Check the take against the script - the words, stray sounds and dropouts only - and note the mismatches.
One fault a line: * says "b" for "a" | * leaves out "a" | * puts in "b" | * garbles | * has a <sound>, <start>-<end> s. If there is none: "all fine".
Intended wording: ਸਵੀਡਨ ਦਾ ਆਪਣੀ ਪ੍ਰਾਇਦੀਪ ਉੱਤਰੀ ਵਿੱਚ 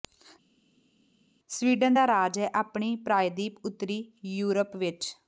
* puts in "ਰਾਜ ਹੈ"
* puts in "ਯੂਰਪ"